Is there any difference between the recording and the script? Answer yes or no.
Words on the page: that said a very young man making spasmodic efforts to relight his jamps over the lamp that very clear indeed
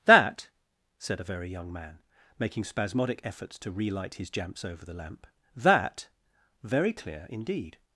no